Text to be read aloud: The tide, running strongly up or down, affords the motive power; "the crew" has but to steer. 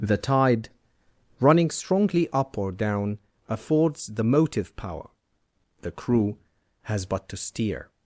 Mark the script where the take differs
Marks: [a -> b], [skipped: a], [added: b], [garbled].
The tide, running strongly up or down, affords the motive power; "the crew" has but to steer.